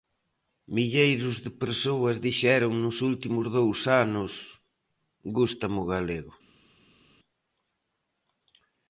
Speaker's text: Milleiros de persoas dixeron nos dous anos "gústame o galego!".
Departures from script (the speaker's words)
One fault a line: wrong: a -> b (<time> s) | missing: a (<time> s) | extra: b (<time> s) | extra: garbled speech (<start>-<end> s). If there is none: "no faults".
extra: últimos (3.1 s)